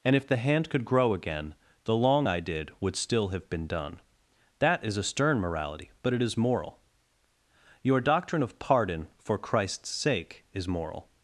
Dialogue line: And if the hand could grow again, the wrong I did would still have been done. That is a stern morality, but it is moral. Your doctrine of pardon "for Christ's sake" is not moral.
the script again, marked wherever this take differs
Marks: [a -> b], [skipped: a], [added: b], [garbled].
And if the hand could grow again, the [wrong -> long] I did would still have been done. That is a stern morality, but it is moral. Your doctrine of pardon "for Christ's sake" is [skipped: not] moral.